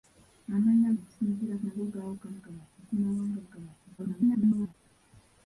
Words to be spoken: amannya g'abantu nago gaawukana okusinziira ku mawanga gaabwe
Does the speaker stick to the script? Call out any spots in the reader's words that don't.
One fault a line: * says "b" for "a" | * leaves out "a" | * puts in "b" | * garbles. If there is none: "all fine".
* says "okusinziira" for "g'abantu"
* says "gaabwe" for "okusinziira"
* garbles